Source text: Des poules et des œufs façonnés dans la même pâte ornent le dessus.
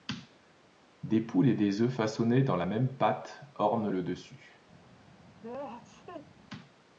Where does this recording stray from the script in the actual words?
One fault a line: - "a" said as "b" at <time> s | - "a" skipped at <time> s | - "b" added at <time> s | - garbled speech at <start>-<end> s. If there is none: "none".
none